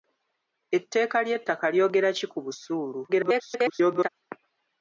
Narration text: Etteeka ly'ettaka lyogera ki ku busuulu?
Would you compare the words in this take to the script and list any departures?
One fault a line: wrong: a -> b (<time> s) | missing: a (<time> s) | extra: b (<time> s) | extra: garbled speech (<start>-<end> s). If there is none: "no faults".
extra: garbled speech (3.1-4.1 s)